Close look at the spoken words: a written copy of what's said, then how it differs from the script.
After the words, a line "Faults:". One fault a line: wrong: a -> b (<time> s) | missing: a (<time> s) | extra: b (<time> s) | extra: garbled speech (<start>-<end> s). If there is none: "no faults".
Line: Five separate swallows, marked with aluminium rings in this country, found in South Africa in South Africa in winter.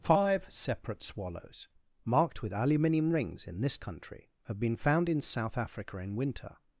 Five separate swallows, marked with aluminium rings in this country, have been found in South Africa in winter.
Faults:
wrong: found in South Africa -> have been found (4.5 s)